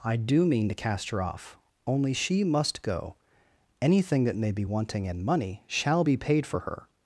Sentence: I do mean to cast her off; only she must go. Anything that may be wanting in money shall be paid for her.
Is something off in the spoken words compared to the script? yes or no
no